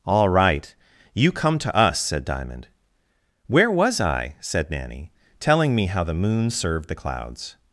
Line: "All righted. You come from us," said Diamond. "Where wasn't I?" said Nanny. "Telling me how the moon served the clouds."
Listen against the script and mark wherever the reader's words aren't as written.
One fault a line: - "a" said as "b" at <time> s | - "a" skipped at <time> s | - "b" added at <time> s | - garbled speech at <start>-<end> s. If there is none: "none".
- "righted" said as "right" at 0.3 s
- "from" said as "to" at 1.6 s
- "wasn't" said as "was" at 3.7 s